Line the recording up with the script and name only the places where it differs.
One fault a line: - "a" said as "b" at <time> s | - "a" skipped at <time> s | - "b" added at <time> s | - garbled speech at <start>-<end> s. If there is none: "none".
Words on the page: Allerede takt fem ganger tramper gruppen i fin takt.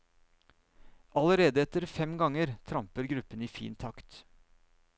- "takt" said as "etter" at 1.6 s